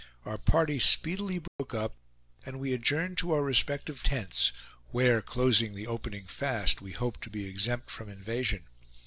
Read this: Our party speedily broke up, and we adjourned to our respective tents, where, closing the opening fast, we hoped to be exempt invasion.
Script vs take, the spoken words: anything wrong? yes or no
yes